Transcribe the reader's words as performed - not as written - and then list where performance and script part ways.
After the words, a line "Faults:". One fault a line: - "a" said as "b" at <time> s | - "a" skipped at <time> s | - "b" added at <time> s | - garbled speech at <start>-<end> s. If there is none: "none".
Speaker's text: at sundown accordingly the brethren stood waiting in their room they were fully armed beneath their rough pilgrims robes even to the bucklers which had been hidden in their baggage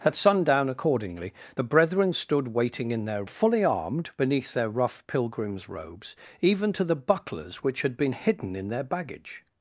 at sundown accordingly the brethren stood waiting in their fully armed beneath their rough pilgrims robes even to the bucklers which had been hidden in their baggage
Faults:
- "room they were" skipped at 3.2 s